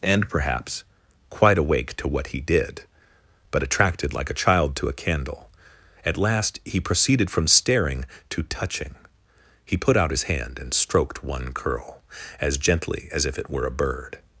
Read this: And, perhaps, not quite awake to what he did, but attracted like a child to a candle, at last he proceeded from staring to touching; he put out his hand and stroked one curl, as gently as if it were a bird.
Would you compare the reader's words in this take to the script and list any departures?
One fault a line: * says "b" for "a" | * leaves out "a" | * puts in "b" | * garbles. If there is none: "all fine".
* leaves out "not"